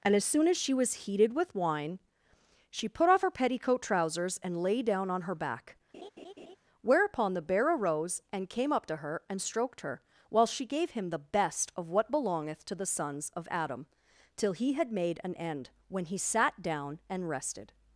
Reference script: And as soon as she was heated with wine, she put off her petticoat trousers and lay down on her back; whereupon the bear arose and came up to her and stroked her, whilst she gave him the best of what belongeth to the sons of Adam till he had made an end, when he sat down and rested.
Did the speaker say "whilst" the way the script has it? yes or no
no